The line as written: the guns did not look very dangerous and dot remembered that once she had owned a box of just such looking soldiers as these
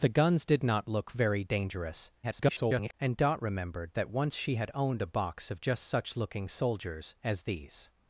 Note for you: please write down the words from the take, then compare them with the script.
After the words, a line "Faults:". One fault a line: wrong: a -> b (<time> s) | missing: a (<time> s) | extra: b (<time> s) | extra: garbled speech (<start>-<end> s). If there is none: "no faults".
the guns did not look very dangerous [garbled] and dot remembered that once she had owned a box of just such looking soldiers as these
Faults:
extra: garbled speech (2.2-2.9 s)